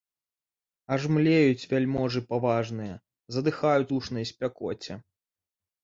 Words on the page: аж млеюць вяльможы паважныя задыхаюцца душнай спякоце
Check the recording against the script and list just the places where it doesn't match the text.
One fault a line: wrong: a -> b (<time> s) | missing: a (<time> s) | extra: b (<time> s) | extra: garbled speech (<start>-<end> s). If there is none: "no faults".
no faults